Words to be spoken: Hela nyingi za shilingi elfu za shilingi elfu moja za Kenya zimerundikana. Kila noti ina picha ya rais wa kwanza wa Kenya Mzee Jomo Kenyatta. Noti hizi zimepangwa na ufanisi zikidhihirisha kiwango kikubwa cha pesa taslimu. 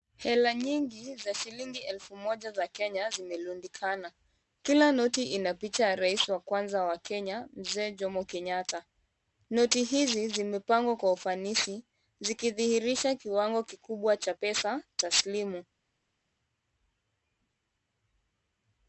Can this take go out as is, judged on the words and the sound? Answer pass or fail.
fail